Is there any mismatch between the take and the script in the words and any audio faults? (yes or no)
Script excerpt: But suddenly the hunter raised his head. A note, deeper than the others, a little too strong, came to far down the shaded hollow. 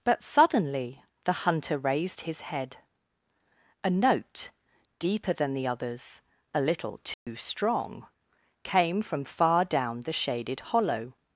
yes